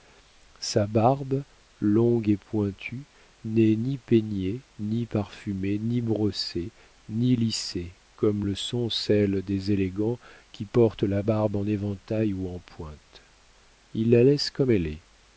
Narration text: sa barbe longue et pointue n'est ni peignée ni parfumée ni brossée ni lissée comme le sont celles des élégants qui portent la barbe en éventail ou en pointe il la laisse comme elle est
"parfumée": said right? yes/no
yes